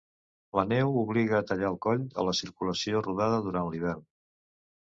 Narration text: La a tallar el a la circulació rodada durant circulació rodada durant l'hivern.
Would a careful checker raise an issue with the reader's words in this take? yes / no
yes